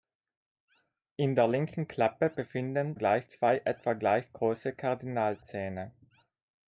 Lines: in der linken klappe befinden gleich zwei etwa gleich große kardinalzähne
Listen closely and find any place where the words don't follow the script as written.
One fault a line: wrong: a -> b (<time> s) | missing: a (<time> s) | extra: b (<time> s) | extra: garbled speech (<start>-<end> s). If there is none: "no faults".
no faults